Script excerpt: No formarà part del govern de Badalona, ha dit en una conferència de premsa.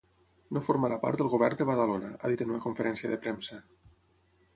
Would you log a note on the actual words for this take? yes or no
no